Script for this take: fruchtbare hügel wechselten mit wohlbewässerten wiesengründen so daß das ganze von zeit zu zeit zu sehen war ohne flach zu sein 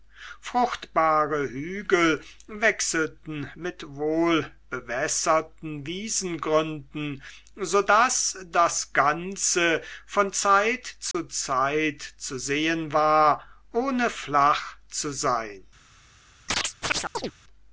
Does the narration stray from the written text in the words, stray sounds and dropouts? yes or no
yes